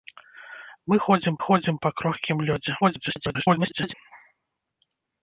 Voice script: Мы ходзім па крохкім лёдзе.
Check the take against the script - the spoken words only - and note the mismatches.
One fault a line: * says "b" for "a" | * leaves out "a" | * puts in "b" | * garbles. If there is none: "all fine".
* puts in "ходзім"
* garbles